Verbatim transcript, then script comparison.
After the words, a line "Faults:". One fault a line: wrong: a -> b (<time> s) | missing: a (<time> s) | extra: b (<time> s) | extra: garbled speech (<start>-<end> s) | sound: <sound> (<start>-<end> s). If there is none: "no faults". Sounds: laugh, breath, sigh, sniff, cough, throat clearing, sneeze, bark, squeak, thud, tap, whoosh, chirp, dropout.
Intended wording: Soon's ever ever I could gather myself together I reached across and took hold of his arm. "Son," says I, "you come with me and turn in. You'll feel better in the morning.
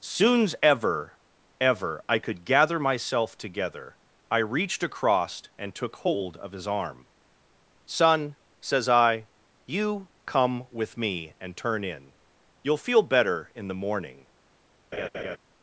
Soon's ever ever I could gather myself together I reached across and took hold of his arm. "Son," says I, "you come with me and turn in. You'll feel better in the morning.
Faults:
sound: laugh (14.9-15.4 s)